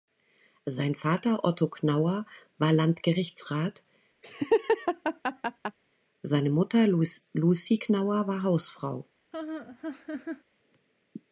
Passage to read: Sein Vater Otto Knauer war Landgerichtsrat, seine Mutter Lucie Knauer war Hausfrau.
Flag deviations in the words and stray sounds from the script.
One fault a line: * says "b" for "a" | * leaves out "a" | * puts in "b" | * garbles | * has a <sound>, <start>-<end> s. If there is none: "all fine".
* has a laugh, 4.2-5.8 s
* has a laugh, 9.3-10.4 s